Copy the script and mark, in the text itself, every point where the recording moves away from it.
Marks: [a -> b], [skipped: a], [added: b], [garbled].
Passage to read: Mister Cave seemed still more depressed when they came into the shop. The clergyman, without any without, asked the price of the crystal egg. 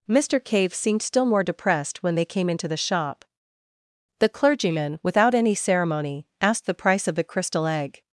Mister Cave seemed still more depressed when they came into the shop. The clergyman, without any [without, -> ceremony] asked the price of the crystal egg.